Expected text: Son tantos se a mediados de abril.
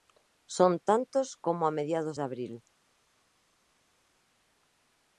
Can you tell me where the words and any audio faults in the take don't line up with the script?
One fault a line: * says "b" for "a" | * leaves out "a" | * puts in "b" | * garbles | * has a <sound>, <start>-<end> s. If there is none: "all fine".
* says "como" for "se"